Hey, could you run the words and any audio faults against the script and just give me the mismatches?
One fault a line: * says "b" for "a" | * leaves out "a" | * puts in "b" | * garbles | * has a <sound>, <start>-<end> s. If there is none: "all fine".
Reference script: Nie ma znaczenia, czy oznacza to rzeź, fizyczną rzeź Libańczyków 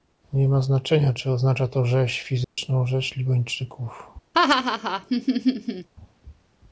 * has a dropout, 2.4-2.6 s
* has a laugh, 4.3-5.9 s